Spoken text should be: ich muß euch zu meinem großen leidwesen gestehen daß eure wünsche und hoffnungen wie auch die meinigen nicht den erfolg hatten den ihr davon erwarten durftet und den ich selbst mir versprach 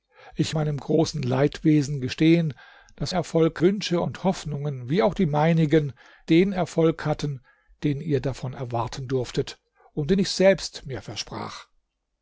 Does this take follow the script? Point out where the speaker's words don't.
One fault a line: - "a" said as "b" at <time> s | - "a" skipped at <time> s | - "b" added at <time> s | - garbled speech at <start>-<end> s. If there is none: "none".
- "muß euch zu" skipped at 0.6 s
- "eure" said as "erfolg" at 3.1 s
- "nicht" skipped at 5.9 s